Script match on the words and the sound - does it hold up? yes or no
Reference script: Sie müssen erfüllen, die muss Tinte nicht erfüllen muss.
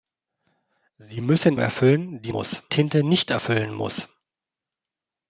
yes